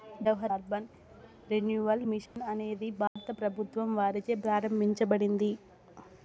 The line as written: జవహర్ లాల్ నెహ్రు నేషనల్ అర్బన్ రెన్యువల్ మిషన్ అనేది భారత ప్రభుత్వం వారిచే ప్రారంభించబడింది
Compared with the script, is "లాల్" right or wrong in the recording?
wrong